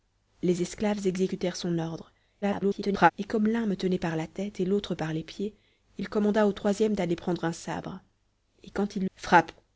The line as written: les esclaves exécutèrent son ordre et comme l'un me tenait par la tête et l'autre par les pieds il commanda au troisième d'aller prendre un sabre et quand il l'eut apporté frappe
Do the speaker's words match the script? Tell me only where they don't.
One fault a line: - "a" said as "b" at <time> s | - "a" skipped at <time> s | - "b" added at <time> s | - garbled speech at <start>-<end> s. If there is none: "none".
- garbled speech at 2.4-3.1 s
- "l'eut apporté" skipped at 9.0 s